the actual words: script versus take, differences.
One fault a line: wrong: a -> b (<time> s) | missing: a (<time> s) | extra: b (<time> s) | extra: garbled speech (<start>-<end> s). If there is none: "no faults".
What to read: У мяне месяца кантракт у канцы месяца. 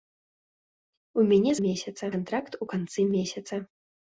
no faults